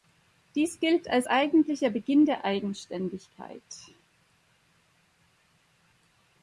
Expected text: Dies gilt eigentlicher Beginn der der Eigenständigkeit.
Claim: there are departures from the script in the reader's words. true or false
true